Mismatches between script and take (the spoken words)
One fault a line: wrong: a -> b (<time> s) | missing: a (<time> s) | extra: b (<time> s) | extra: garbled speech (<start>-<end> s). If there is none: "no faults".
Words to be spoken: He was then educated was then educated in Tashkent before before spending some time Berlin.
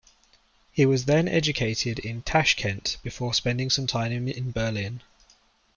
missing: was then educated (2.0 s)
missing: before (3.3 s)
extra: in (4.3 s)